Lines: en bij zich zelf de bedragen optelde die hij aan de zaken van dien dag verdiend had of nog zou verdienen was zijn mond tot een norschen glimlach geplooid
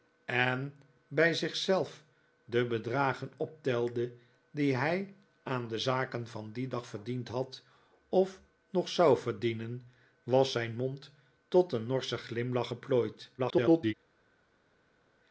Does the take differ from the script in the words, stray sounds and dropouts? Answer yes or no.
yes